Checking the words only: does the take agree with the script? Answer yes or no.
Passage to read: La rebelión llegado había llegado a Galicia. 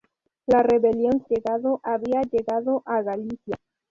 yes